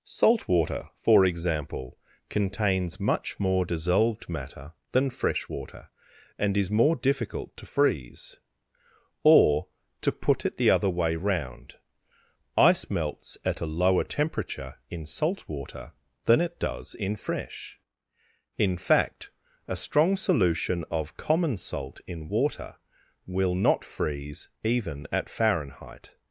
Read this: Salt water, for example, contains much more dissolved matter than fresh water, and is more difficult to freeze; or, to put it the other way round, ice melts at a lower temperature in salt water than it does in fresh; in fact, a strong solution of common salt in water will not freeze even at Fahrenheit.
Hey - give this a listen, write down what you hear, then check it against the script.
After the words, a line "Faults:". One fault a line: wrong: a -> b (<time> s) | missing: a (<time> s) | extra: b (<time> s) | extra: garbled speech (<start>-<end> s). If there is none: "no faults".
Salt water, for example, contains much more dissolved matter than fresh water, and is more difficult to freeze; or, to put it the other way round, ice melts at a lower temperature in salt water than it does in fresh; in fact, a strong solution of common salt in water will not freeze even at Fahrenheit.
Faults:
no faults